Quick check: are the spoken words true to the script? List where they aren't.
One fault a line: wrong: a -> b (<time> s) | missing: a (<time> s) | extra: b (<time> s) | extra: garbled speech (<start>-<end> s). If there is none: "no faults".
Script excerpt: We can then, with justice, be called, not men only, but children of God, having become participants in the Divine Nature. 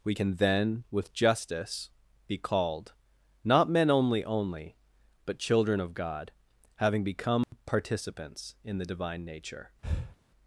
extra: only (4.2 s)